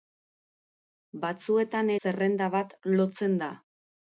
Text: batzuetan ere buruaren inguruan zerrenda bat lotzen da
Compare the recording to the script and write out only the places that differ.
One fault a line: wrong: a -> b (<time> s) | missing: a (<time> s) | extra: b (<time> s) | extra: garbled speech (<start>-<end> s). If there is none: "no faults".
missing: ere buruaren inguruan (1.9 s)